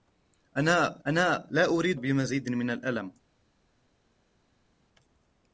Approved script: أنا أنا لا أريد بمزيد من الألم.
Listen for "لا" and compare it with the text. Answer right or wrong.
right